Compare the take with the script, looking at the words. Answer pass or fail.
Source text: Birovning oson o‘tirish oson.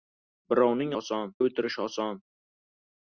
pass